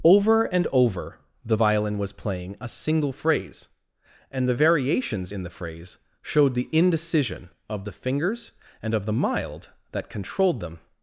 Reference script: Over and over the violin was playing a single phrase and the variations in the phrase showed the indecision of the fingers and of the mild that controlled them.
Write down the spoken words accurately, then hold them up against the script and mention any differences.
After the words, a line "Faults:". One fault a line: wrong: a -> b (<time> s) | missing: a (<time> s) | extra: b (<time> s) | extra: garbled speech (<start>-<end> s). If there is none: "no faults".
Over and over the violin was playing a single phrase and the variations in the phrase showed the indecision of the fingers and of the mild that controlled them.
Faults:
no faults